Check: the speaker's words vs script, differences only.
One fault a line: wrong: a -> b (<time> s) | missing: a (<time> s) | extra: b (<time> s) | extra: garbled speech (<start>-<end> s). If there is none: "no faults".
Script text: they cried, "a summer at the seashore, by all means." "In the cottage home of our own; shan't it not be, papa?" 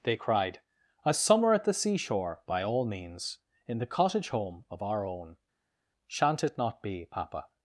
no faults